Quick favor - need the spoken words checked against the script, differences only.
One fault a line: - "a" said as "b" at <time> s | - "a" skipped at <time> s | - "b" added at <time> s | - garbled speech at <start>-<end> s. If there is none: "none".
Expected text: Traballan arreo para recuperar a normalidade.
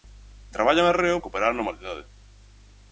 - "para" skipped at 1.2 s